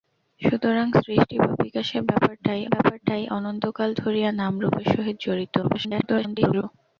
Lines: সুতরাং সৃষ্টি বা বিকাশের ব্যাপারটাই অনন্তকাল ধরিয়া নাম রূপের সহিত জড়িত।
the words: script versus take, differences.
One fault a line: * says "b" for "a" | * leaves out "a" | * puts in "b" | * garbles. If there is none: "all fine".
* puts in "ব্যাপারটাই"
* garbles